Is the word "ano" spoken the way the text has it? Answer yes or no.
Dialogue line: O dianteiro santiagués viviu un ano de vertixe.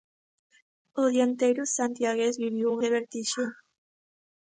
no